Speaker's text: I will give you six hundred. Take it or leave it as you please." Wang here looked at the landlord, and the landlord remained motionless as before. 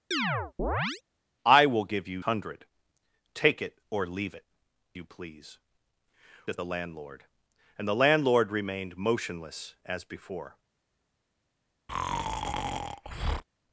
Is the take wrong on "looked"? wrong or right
wrong